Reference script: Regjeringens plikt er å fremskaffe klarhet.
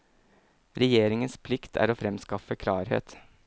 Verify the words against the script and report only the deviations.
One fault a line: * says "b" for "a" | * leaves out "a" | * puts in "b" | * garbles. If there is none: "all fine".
all fine